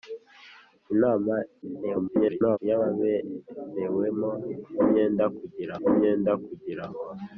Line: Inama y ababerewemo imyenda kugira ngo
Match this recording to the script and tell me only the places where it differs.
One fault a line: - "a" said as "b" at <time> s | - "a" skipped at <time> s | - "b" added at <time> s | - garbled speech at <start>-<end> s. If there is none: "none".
- garbled speech at 1.6-2.6 s
- "imyenda kugira" added at 5.9 s